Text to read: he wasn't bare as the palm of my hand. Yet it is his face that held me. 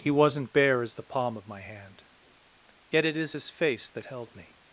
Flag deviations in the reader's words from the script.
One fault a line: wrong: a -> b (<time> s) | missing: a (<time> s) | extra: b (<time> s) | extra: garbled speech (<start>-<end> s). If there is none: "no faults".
no faults